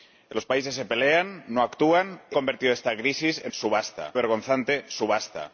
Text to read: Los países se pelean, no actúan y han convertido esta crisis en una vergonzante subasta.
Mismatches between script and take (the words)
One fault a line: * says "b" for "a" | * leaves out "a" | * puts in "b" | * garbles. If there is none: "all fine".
* leaves out "han"
* says "subasta" for "una"